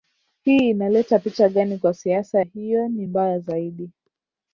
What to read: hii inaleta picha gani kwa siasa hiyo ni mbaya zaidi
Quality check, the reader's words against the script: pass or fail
pass